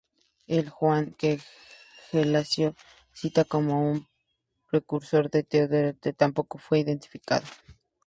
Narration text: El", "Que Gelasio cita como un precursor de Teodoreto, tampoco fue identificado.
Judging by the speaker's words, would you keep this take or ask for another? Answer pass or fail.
fail